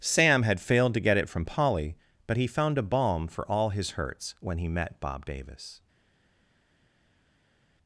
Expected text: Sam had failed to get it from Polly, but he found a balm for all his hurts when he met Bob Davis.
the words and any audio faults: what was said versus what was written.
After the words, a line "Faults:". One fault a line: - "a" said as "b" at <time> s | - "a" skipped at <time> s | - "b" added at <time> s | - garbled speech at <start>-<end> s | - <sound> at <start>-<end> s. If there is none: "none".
Sam had failed to get it from Polly, but he found a balm for all his hurts when he met Bob Davis.
Faults:
none